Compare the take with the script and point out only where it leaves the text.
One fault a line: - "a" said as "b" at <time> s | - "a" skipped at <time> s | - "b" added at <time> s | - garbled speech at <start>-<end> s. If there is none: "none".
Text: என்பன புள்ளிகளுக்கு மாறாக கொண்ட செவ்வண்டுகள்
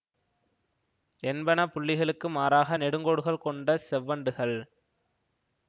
- "நெடுங்கோடுகள்" added at 2.8 s